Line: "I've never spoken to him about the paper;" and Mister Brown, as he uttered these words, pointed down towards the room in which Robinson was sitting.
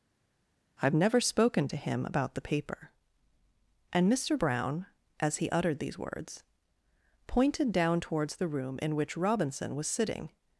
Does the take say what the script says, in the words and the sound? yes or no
yes